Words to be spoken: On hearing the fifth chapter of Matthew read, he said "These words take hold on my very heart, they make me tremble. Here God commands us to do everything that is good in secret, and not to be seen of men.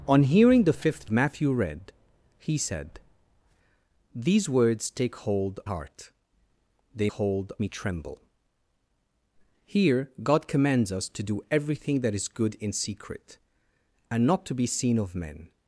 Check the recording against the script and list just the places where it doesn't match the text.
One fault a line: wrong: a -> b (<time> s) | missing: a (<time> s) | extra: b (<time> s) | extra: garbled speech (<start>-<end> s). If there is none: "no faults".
missing: chapter of (1.1 s)
missing: on my very (5.6 s)
wrong: make -> hold (7.1 s)